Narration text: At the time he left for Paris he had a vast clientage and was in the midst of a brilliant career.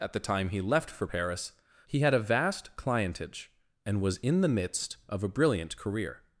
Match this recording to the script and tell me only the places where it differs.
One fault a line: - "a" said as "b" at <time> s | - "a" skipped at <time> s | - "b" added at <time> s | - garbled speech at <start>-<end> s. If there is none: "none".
none